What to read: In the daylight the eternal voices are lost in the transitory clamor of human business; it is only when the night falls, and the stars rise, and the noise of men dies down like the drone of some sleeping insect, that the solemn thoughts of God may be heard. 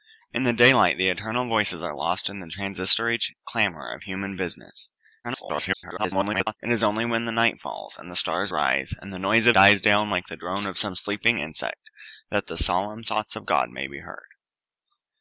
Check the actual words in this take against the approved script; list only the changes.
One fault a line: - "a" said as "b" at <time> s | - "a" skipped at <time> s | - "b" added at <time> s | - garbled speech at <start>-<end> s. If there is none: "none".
- garbled speech at 5.2-6.6 s
- "men" skipped at 9.6 s